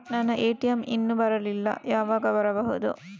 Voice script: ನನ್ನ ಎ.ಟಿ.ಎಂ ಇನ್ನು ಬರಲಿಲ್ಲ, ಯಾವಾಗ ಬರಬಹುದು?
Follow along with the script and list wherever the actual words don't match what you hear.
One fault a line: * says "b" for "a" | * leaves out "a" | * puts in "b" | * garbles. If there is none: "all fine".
all fine